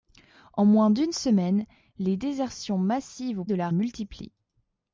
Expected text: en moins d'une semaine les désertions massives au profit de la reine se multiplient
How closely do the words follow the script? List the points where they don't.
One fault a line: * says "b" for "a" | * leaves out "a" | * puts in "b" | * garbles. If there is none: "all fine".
* leaves out "profit"
* leaves out "reine se"